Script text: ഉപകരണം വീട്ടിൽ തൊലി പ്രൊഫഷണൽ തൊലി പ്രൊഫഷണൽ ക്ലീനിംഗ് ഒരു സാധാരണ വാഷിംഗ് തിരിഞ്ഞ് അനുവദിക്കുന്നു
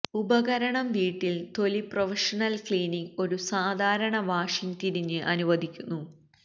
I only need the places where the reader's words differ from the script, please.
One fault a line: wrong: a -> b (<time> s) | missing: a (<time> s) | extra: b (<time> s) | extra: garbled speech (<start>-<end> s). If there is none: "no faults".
missing: തൊലി പ്രൊഫഷണൽ (2.5 s)